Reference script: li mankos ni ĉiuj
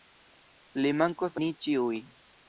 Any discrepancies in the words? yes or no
no